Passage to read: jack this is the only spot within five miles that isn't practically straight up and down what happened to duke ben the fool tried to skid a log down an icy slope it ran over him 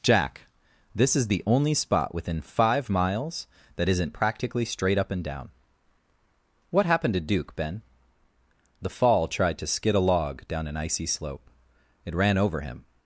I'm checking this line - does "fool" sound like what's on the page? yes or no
no